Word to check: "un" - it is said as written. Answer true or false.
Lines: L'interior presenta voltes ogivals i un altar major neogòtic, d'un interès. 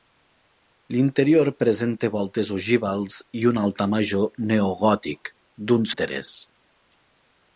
true